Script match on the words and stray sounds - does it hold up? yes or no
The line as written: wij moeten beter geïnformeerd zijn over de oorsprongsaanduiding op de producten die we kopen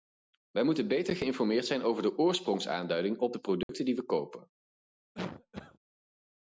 no